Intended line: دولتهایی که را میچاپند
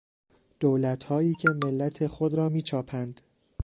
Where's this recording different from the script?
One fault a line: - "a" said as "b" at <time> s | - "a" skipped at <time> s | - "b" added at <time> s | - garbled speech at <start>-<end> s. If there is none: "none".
- "ملت خود" added at 1.5 s